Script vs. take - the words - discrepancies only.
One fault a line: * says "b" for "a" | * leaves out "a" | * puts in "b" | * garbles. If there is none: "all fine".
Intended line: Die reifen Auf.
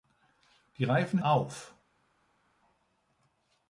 all fine